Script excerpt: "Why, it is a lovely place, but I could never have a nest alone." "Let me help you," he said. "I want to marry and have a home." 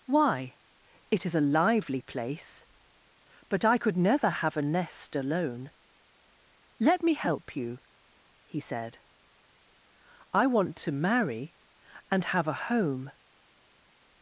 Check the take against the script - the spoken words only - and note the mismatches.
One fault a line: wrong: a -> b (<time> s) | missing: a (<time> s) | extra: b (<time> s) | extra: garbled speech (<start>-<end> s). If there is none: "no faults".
wrong: lovely -> lively (1.4 s)